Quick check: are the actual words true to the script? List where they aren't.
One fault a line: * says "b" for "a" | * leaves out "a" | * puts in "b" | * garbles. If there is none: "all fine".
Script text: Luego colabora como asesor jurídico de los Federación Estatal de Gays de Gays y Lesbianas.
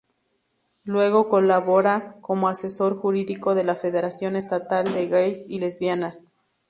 * says "la" for "los"
* leaves out "de Gays"